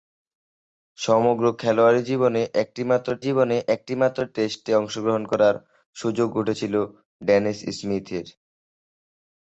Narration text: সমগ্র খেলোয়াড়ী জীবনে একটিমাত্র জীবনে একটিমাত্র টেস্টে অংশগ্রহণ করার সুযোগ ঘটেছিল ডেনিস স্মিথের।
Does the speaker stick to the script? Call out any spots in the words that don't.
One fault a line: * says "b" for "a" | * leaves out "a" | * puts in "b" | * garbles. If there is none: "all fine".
all fine